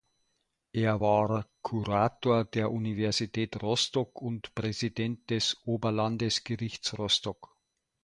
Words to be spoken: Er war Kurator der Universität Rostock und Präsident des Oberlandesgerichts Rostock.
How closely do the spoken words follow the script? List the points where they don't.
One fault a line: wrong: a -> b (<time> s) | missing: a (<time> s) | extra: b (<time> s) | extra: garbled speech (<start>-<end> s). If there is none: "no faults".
no faults